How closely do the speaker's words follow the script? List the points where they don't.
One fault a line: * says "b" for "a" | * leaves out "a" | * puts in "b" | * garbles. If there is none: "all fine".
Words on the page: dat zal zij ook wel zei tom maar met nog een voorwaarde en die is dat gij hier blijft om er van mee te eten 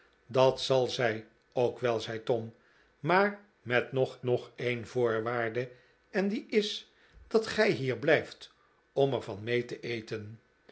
* puts in "nog"